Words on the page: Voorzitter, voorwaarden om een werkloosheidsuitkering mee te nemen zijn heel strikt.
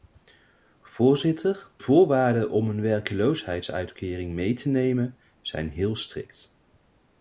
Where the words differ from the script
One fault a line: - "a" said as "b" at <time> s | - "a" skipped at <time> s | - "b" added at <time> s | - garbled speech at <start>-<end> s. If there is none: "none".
none